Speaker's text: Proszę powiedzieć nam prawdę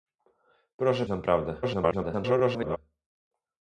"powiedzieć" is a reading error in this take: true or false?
true